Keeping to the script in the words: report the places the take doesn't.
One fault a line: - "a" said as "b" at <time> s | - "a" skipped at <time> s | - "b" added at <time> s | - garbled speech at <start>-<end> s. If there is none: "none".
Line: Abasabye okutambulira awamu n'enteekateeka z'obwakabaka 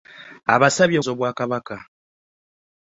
- "okutambulira awamu n'enteekateeka" skipped at 1.0 s